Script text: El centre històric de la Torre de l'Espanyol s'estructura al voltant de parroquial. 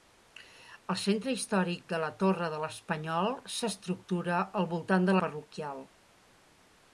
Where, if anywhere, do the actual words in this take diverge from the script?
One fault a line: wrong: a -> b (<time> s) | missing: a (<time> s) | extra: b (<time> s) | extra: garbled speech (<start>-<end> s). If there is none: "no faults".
no faults